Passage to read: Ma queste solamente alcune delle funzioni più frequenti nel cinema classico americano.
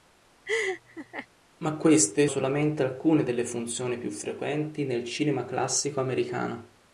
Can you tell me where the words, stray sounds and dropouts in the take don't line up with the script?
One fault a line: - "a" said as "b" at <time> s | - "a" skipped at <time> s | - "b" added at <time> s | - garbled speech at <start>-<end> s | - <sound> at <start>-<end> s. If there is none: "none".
- laugh at 0.5-1.3 s